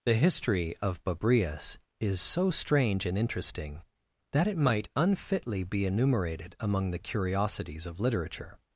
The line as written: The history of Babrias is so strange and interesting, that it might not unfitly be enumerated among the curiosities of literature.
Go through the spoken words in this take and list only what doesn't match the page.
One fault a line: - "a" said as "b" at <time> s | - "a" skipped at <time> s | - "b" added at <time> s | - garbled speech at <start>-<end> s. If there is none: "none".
- "not" skipped at 4.9 s